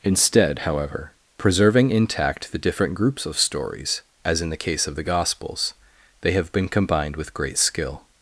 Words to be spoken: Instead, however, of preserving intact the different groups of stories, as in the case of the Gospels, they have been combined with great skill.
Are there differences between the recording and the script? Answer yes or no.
yes